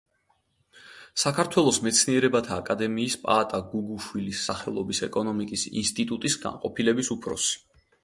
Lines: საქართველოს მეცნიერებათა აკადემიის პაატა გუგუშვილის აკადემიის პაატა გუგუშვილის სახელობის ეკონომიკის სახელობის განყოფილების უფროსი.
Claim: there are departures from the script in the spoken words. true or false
true